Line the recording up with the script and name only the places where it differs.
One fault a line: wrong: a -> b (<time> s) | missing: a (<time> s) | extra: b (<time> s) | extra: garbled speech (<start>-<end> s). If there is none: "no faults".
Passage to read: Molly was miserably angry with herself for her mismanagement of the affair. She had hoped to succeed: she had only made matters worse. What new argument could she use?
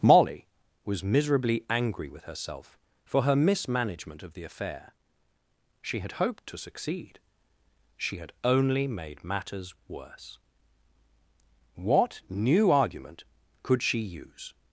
no faults